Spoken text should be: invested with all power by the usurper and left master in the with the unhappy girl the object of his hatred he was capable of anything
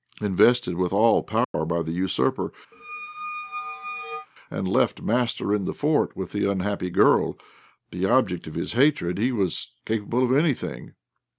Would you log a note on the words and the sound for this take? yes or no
yes